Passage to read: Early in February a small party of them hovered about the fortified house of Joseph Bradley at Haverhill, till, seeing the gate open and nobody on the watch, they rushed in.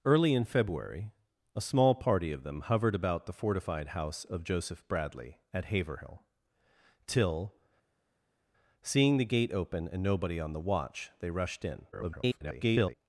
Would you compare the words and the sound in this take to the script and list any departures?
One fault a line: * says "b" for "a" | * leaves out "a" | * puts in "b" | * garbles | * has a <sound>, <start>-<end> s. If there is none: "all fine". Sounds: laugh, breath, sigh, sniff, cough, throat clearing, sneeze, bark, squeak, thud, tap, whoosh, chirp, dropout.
* garbles